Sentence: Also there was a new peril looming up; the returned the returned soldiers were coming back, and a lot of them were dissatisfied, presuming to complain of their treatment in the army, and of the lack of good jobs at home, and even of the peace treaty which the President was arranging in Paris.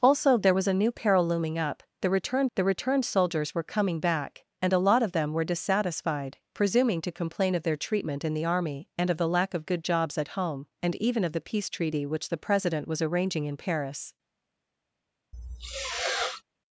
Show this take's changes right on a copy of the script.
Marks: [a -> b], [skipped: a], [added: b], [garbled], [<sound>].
Also there was a new peril looming up; the returned the returned soldiers were coming back, and a lot of them were dissatisfied, presuming to complain of their treatment in the army, and of the lack of good jobs at home, and even of the peace treaty which the President was arranging in Paris. [sniff]